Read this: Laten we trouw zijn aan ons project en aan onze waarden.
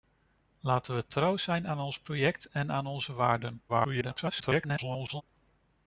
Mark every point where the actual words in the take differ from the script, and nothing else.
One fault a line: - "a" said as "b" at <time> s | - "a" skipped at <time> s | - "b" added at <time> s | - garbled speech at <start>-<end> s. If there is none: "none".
- garbled speech at 3.7-5.2 s